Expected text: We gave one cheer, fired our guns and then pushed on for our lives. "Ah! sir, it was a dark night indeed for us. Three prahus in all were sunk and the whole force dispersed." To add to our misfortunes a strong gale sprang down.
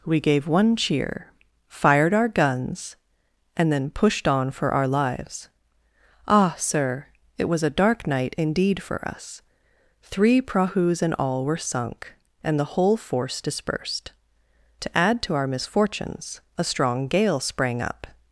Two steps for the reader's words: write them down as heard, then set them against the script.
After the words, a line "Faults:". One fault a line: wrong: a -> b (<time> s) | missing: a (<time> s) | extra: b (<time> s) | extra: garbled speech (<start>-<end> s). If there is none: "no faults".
We gave one cheer, fired our guns and then pushed on for our lives. "Ah! sir, it was a dark night indeed for us. Three prahus in all were sunk and the whole force dispersed." To add to our misfortunes a strong gale sprang up.
Faults:
wrong: down -> up (17.8 s)